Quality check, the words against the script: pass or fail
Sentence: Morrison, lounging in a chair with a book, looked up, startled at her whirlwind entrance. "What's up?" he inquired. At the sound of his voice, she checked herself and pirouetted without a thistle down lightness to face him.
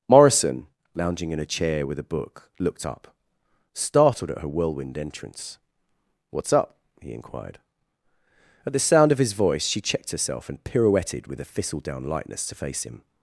fail